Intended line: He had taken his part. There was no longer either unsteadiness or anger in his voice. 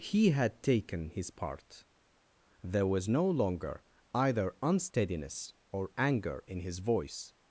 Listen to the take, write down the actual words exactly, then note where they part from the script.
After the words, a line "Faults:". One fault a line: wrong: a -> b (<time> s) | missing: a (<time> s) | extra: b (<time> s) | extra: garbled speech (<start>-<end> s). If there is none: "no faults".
He had taken his part. There was no longer either unsteadiness or anger in his voice.
Faults:
no faults